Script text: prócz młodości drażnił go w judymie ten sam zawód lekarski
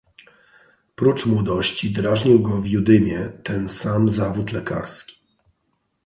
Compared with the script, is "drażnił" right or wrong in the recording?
right